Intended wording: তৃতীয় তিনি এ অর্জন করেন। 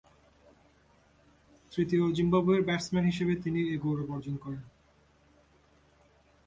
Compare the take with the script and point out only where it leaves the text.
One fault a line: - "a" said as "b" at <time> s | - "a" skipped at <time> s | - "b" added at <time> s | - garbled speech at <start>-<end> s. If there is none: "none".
- "জিম্বাবুয়ের ব্যাটসম্যান হিসেবে" added at 2.2 s
- "গৌরব" added at 3.8 s